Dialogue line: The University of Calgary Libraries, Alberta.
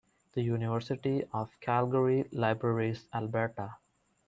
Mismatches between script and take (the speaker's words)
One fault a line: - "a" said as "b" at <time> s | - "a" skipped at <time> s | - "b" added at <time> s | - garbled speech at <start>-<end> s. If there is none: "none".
none